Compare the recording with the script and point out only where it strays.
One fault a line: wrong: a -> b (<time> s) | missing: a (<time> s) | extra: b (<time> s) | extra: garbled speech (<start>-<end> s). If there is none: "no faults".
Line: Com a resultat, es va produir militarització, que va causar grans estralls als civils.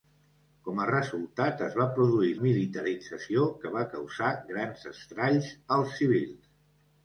no faults